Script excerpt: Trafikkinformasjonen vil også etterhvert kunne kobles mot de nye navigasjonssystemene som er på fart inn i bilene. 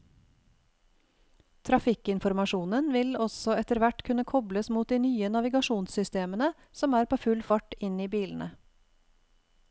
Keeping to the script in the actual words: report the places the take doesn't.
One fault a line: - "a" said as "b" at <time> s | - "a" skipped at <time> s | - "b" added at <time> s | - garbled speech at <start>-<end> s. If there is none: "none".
- "full" added at 7.3 s